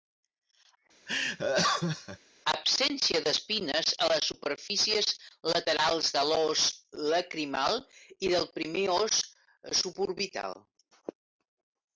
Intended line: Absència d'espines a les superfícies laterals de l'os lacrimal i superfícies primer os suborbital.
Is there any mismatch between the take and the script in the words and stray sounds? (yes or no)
yes